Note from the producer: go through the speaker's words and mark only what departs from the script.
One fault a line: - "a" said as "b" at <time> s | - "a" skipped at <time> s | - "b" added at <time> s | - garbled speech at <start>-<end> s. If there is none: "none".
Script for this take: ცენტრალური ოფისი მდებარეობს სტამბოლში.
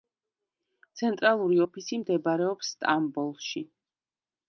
none